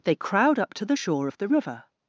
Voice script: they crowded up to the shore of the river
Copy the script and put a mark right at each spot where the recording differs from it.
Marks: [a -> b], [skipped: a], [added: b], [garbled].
they [crowded -> crowd] up to the shore of the river